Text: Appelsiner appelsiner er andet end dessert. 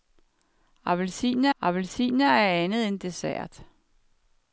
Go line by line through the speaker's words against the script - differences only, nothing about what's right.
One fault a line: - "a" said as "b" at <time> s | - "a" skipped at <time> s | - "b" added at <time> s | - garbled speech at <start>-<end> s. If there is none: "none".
none